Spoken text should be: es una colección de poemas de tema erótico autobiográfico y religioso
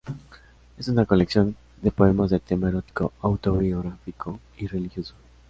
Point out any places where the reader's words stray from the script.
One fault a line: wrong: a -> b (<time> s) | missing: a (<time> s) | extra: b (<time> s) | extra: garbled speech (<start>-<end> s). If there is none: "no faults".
no faults